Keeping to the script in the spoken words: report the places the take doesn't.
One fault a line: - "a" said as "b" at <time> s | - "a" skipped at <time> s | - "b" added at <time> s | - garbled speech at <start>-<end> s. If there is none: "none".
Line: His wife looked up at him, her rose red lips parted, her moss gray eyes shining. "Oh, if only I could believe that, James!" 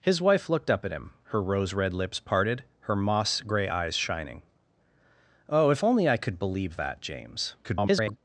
- garbled speech at 7.6-8.2 s